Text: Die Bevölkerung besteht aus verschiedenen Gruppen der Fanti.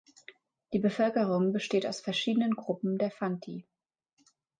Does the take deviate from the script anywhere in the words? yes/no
no